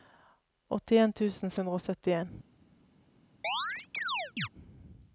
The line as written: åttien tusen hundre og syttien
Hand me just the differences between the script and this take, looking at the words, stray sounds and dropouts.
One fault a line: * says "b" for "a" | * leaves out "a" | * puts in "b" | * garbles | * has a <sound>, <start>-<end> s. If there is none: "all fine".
* has a chirp, 3.4-4.5 s